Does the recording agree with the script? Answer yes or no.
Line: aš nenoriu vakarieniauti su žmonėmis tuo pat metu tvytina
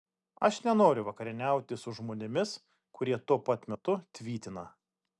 no